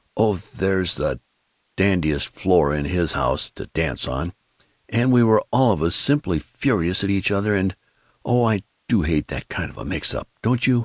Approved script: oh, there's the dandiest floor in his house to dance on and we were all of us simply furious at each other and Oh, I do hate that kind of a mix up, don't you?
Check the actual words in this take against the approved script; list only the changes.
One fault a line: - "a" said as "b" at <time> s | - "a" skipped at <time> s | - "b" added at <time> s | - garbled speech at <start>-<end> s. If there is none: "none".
none